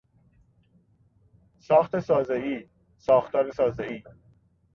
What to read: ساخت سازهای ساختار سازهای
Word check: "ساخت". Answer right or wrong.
right